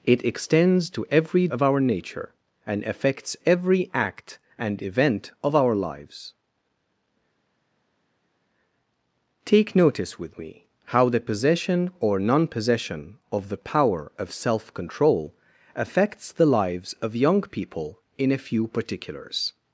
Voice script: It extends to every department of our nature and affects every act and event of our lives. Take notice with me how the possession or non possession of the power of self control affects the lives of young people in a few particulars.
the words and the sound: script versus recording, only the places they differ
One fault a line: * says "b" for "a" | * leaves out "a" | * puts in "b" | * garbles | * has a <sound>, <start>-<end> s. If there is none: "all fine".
* leaves out "department"